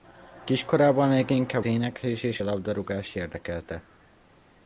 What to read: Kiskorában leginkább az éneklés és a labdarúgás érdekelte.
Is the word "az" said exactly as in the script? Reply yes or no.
no